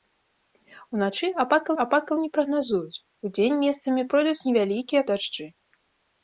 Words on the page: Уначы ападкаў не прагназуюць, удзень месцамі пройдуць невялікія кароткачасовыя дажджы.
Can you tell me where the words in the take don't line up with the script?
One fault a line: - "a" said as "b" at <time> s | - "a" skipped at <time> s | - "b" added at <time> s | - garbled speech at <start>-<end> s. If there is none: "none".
- "ападкаў" added at 1.8 s
- "кароткачасовыя" skipped at 5.0 s